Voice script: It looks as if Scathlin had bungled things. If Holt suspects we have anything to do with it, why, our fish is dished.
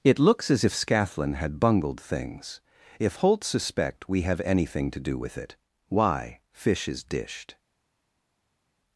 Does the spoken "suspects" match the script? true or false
false